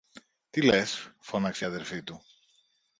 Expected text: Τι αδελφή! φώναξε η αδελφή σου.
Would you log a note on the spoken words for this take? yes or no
yes